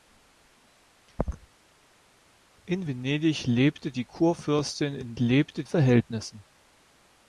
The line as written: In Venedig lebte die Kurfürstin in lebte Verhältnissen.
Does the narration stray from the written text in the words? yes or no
no